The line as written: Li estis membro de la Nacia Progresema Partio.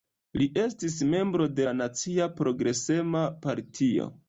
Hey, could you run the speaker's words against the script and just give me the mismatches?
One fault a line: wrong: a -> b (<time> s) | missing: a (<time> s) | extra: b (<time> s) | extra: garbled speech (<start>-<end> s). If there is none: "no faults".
no faults